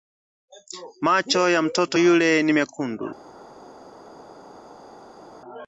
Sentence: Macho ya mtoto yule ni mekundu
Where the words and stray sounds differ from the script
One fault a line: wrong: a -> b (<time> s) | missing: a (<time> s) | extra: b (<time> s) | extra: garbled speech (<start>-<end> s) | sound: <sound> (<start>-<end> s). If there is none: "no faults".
no faults